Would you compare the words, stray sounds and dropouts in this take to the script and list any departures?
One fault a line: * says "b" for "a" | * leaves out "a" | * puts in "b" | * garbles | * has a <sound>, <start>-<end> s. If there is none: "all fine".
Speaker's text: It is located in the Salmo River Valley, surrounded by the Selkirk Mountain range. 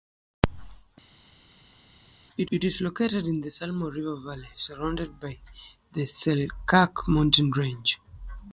* puts in "it"